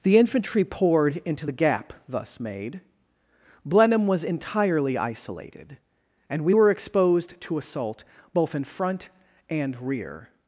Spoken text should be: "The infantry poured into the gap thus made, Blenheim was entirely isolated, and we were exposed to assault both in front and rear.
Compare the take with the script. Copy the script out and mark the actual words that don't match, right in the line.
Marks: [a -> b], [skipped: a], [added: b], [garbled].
"The infantry poured into the gap thus made, Blenheim was entirely isolated, and we were exposed to assault both in front and rear.